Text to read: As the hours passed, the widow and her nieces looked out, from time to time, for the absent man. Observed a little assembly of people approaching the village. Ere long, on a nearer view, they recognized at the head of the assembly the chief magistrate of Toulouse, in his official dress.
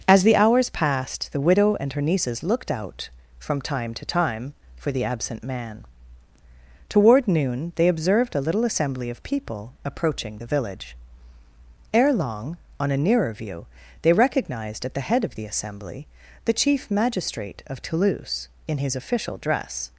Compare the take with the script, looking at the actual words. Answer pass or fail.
fail